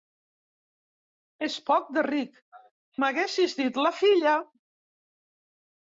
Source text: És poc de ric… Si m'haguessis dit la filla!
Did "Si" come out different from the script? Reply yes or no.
yes